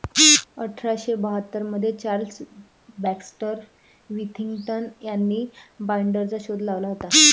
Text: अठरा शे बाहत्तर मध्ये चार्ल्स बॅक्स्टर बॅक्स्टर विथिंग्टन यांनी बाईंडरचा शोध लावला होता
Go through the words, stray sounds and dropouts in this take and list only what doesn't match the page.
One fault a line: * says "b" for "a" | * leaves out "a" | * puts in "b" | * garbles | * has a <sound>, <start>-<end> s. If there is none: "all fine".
* leaves out "बॅक्स्टर"